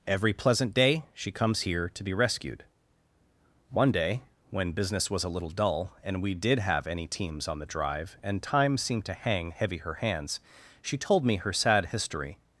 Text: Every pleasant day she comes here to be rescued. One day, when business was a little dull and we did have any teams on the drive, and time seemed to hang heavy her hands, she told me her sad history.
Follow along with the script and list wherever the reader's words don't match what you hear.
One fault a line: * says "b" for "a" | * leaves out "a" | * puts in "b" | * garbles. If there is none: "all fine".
all fine